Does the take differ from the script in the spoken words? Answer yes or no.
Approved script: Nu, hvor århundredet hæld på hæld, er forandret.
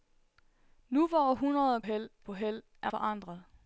no